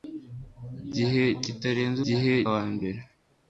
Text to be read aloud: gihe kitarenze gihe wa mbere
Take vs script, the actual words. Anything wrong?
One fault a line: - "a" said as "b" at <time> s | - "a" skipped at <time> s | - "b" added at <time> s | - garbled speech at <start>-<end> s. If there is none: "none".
none